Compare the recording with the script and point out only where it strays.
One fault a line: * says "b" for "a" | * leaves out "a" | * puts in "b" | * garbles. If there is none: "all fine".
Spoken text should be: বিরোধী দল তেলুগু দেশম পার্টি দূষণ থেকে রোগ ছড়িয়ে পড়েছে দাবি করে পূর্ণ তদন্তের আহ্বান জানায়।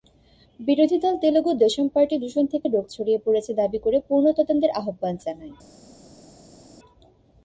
all fine